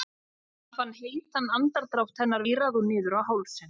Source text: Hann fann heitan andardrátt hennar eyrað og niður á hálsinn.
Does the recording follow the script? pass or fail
pass